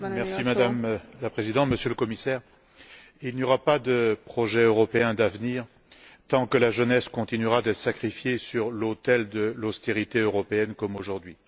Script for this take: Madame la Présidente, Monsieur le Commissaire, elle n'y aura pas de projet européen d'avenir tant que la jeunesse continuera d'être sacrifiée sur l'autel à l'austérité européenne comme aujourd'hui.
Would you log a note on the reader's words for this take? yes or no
yes